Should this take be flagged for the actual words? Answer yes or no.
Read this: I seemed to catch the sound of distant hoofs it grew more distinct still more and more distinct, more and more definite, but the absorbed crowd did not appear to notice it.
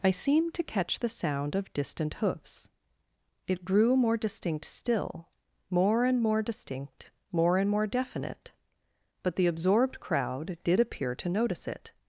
yes